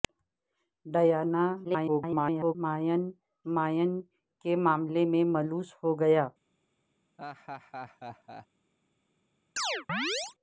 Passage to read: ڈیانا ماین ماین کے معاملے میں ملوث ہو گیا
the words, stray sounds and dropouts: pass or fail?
fail